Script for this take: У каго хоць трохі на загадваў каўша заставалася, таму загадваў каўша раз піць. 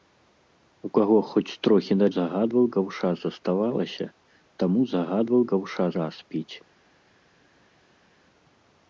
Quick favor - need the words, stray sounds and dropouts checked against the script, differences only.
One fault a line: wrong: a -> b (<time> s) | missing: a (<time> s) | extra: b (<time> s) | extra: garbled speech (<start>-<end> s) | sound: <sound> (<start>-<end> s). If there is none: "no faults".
no faults